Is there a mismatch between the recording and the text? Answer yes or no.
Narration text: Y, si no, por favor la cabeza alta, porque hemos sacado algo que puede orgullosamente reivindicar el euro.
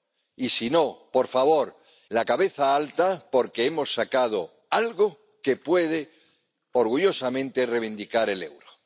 no